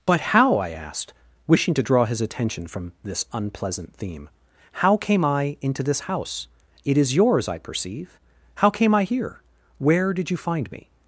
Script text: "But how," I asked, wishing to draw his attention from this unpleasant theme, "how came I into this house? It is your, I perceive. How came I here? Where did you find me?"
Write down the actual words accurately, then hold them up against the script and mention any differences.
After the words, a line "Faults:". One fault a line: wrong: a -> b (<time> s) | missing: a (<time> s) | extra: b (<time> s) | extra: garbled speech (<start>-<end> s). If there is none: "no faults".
"But how," I asked, wishing to draw his attention from this unpleasant theme, "how came I into this house? It is yours, I perceive. How came I here? Where did you find me?"
Faults:
wrong: your -> yours (7.2 s)